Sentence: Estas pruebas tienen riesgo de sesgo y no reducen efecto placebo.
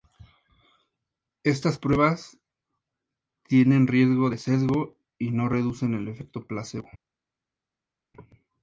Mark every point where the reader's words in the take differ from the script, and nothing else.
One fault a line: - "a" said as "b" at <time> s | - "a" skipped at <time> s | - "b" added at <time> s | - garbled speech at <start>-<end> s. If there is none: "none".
- "el" added at 5.9 s